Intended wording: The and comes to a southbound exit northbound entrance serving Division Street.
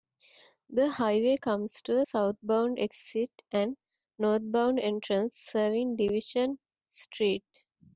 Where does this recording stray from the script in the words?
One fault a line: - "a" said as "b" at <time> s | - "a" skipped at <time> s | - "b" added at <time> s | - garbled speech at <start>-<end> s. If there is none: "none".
- "and" said as "highway" at 0.9 s
- "and" added at 3.5 s